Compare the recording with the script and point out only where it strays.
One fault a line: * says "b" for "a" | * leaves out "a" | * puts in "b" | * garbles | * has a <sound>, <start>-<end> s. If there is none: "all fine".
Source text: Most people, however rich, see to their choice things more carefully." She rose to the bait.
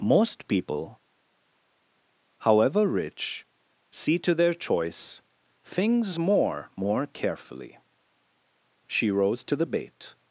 * puts in "more"